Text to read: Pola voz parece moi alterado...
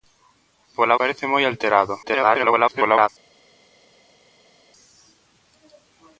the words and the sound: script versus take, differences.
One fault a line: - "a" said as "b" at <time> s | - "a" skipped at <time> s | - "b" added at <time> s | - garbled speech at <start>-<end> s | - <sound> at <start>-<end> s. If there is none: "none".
- "voz" skipped at 1.0 s
- garbled speech at 2.0-3.1 s